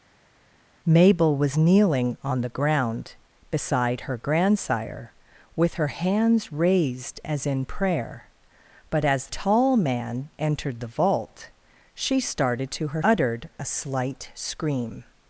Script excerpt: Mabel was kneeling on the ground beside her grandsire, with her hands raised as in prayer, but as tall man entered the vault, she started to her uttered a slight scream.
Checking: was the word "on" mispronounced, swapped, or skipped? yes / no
no